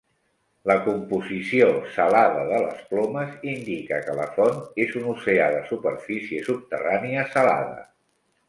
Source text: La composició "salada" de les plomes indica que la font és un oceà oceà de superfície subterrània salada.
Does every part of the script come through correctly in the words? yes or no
no